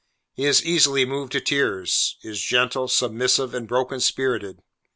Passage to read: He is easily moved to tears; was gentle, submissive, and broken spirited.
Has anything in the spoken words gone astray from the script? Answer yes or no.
yes